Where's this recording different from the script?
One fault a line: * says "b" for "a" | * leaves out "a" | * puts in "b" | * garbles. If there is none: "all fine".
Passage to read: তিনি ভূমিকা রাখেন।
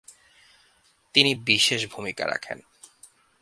* puts in "বিশেষ"